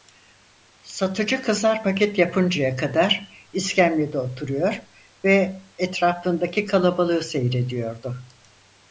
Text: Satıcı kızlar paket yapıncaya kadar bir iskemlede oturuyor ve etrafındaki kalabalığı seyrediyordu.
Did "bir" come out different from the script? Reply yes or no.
yes